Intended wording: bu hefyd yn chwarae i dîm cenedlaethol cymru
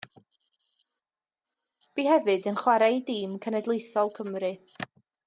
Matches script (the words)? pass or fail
pass